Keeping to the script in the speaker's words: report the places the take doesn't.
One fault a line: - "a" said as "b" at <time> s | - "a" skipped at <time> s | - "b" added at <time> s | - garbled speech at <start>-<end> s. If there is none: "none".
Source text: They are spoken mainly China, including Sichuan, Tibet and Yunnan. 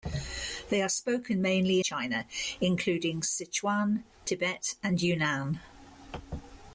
none